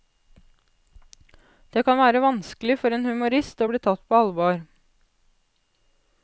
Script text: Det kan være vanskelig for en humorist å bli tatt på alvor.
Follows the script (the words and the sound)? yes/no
yes